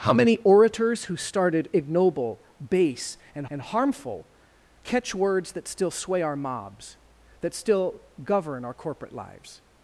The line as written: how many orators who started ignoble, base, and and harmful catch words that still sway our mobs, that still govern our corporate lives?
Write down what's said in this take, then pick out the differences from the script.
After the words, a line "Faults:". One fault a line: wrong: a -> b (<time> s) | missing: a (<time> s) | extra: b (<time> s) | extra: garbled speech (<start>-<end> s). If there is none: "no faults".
how many orators who started ignoble, base, and and harmful catch words that still sway our mobs, that still govern our corporate lives?
Faults:
no faults